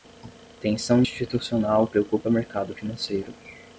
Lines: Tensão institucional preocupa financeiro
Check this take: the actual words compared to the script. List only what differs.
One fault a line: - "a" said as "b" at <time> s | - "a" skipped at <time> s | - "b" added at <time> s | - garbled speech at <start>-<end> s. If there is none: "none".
- "mercado" added at 2.3 s